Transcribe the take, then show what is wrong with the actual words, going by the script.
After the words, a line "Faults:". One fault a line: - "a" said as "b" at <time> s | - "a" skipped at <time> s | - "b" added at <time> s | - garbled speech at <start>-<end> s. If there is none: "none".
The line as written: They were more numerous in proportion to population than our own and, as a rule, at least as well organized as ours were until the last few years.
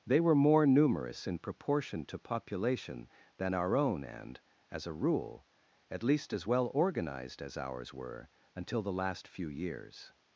They were more numerous in proportion to population than our own and, as a rule, at least as well organized as ours were until the last few years.
Faults:
none